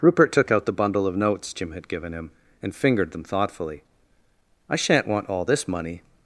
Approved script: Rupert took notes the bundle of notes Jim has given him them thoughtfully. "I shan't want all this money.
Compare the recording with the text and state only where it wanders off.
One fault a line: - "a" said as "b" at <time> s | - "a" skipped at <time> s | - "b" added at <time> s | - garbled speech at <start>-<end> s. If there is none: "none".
- "notes" said as "out" at 0.5 s
- "has" said as "had" at 1.7 s
- "and fingered" added at 2.6 s